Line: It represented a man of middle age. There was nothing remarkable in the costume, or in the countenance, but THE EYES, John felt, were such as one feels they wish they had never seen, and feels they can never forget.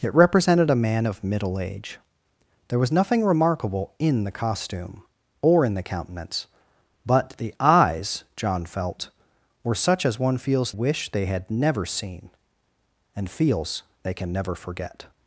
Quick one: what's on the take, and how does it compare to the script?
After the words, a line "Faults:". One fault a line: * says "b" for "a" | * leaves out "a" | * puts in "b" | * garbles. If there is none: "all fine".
It represented a man of middle age. There was nothing remarkable in the costume, or in the countenance, but THE EYES, John felt, were such as one feels wish they had never seen, and feels they can never forget.
Faults:
* leaves out "they"